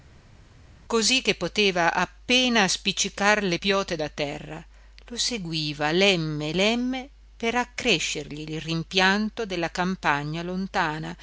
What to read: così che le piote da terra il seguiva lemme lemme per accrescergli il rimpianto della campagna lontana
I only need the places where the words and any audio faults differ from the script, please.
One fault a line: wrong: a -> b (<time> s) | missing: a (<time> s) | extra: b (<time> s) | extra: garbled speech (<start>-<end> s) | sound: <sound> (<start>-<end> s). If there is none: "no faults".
extra: poteva appena spiccicar (1.4 s)
wrong: il -> lo (5.1 s)